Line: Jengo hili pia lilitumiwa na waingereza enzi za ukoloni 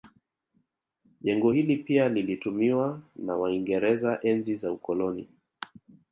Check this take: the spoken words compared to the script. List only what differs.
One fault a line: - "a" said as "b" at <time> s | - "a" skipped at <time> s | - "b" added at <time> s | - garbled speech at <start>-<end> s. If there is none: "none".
none